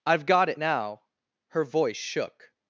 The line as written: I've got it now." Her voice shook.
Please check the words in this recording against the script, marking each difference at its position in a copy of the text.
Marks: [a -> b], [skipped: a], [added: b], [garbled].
I've got it now." Her voice shook.